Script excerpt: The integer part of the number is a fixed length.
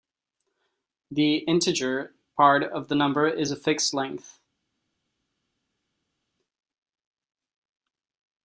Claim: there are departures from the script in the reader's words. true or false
false